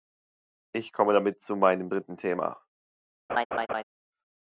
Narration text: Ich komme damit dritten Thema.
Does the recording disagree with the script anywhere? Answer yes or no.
yes